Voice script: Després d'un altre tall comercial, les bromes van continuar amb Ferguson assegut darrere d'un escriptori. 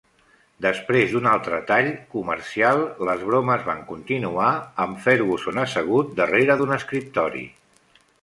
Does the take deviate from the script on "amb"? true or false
false